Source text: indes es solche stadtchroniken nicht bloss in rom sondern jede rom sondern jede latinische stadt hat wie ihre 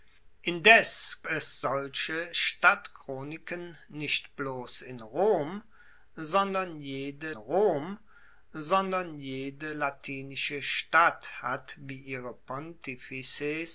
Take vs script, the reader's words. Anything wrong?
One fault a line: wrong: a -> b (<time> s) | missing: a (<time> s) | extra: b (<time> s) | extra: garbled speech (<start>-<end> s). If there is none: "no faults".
no faults